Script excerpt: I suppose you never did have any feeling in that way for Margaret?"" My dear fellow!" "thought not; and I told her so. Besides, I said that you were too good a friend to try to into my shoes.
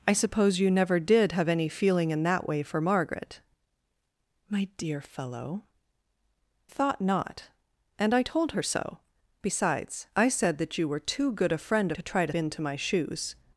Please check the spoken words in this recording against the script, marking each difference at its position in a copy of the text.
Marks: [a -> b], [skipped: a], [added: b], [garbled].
I suppose you never did have any feeling in that way for Margaret?"" My dear fellow!" "thought not; and I told her so. Besides, I said that you were too good a friend to try to into my shoes.